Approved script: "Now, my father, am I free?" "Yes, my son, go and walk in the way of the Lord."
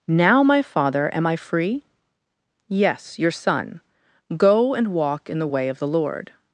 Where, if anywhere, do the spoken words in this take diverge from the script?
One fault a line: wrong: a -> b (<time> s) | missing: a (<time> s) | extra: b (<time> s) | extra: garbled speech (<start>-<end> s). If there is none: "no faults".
wrong: my -> your (3.2 s)